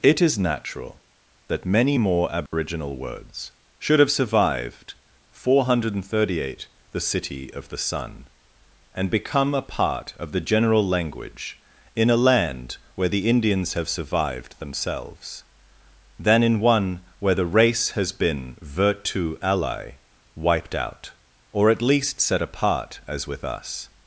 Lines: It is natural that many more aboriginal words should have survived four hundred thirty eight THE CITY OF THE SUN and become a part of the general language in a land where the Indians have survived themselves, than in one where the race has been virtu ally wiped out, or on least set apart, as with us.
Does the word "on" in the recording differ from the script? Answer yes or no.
yes